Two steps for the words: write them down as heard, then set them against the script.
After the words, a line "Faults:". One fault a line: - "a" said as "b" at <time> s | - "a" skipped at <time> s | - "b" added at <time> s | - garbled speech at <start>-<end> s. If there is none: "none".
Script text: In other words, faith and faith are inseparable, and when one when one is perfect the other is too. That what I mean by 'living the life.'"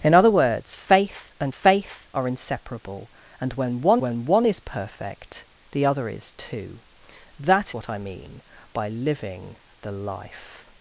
In other words, faith and faith are inseparable, and when one when one is perfect the other is too. That what I mean by 'living the life.'"
Faults:
none